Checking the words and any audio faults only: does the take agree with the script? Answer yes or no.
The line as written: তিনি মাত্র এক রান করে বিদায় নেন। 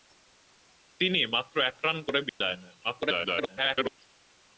no